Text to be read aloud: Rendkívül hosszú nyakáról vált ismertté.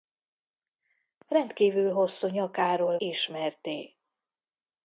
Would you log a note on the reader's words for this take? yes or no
yes